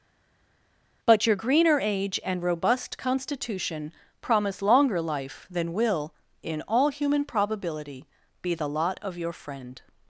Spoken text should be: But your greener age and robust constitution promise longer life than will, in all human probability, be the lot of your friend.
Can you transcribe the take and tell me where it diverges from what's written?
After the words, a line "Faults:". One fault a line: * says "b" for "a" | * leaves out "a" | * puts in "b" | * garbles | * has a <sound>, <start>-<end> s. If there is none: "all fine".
But your greener age and robust constitution promise longer life than will, in all human probability, be the lot of your friend.
Faults:
all fine